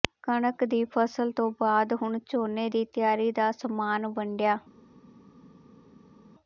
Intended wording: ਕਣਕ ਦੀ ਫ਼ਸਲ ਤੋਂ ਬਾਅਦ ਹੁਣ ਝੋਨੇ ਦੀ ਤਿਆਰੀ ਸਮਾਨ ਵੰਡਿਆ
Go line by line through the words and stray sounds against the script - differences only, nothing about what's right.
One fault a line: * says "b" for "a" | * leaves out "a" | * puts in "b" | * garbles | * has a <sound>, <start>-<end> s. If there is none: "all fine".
* puts in "ਦਾ"